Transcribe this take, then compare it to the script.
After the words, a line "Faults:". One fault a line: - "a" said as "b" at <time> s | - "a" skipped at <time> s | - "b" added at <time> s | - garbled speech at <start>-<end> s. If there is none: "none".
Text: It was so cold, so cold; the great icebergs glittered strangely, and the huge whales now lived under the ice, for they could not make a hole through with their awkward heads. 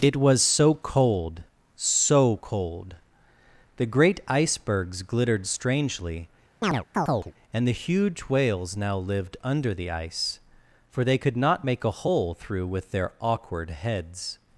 It was so cold, so cold; the great icebergs glittered strangely, and the huge whales now lived under the ice, for they could not make a hole through with their awkward heads.
Faults:
none